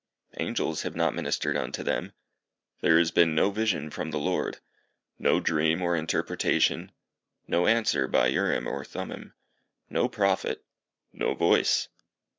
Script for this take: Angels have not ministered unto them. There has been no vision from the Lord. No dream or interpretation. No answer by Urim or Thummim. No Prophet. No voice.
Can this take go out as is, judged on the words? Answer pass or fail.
pass